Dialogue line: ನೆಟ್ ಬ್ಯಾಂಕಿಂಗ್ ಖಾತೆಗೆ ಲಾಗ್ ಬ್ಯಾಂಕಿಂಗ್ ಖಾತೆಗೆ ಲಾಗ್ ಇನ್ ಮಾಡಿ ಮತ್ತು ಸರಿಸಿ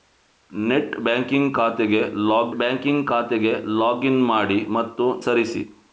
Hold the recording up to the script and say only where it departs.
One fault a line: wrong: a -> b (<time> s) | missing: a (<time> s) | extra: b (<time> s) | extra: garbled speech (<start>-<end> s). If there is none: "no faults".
no faults